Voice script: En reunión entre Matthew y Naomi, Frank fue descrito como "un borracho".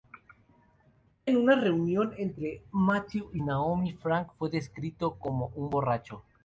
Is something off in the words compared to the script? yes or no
yes